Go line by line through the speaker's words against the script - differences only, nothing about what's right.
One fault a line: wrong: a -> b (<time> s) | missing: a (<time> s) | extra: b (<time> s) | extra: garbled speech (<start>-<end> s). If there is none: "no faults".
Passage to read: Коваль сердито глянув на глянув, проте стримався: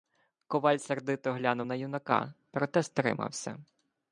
wrong: глянув -> юнака (1.7 s)